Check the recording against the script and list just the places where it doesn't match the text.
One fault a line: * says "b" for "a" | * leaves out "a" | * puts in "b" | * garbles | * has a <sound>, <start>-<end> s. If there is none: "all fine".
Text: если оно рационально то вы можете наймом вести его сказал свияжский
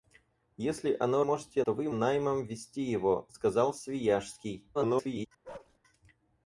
* says "можете" for "рационально"
* leaves out "можете"
* garbles
* has a bark, 5.4-5.8 s